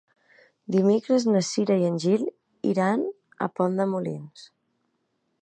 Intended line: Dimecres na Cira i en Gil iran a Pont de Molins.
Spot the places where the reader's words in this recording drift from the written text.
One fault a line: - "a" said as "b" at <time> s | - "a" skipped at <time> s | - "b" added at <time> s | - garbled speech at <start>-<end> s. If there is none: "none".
none